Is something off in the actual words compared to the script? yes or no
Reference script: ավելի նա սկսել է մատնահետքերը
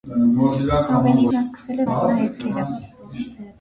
no